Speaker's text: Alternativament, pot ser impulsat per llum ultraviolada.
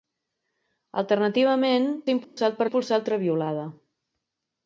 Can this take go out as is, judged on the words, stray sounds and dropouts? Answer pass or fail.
fail